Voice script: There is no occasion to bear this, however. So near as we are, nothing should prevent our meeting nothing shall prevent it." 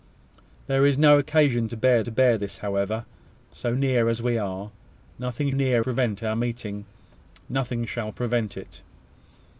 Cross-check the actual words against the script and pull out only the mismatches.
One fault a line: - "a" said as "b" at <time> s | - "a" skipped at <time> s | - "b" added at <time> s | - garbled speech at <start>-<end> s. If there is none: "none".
- "to bear" added at 2.0 s
- "should" said as "near" at 5.5 s